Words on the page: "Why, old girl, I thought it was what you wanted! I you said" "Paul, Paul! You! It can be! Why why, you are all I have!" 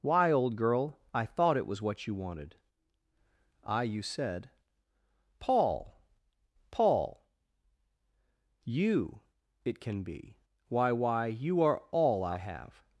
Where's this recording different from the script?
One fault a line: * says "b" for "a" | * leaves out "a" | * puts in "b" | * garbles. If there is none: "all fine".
all fine